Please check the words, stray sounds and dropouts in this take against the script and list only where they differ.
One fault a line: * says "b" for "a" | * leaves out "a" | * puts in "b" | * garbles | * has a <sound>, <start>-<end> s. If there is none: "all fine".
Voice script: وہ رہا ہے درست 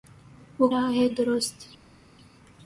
all fine